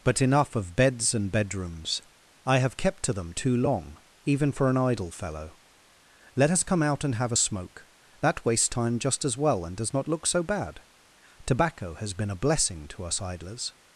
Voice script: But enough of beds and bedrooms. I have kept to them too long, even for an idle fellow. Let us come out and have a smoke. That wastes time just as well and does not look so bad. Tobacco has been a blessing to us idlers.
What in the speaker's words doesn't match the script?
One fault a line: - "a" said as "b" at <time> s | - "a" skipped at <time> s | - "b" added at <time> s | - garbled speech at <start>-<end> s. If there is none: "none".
none